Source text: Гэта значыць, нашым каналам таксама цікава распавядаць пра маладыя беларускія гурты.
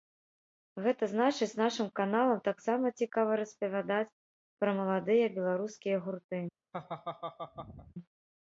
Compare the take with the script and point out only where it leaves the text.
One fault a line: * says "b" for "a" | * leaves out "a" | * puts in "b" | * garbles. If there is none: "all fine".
all fine